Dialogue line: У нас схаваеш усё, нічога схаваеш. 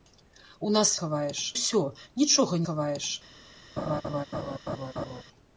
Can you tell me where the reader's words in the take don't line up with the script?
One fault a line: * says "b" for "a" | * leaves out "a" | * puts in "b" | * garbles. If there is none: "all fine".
all fine